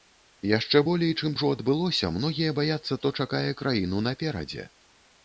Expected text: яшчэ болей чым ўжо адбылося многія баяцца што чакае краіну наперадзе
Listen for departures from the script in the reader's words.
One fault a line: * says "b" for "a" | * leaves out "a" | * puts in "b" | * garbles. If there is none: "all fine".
all fine